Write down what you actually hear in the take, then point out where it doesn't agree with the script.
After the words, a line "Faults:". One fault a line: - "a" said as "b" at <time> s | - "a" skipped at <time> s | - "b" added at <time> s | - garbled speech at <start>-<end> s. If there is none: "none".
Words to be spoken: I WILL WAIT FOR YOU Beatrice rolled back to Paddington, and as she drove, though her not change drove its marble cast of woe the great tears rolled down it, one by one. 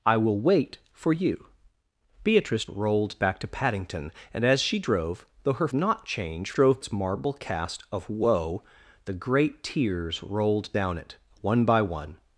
I WILL WAIT FOR YOU Beatrice rolled back to Paddington, and as she drove, though her not change drove its marble cast of woe the great tears rolled down it, one by one.
Faults:
none